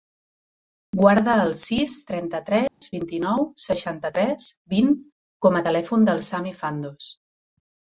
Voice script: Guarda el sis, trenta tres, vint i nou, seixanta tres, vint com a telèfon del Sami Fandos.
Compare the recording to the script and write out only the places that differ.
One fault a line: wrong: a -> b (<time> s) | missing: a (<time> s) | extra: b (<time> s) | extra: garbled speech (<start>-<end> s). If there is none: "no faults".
no faults